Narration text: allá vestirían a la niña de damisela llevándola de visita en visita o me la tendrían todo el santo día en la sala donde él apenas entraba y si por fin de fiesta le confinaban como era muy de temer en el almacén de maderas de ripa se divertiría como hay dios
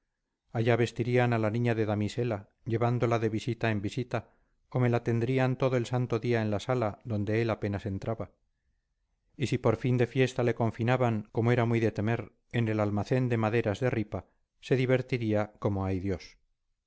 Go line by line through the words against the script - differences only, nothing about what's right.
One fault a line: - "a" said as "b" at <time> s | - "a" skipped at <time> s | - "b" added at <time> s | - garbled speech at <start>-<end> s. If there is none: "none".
none